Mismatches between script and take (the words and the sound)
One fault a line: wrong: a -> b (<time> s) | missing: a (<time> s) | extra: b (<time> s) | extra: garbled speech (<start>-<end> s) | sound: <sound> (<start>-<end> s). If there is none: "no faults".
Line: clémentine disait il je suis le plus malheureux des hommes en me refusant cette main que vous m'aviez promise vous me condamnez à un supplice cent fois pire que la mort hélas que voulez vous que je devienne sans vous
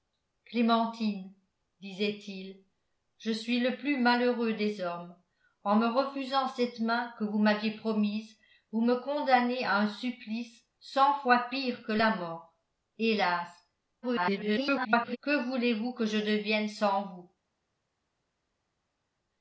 extra: garbled speech (14.0-15.2 s)